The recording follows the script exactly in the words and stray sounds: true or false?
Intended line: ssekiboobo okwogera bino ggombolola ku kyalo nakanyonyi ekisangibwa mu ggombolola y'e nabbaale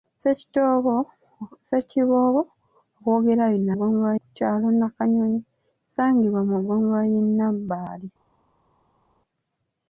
true